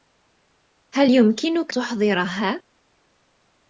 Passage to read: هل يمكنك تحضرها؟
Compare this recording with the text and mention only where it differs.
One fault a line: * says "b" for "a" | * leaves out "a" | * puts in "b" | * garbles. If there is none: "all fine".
all fine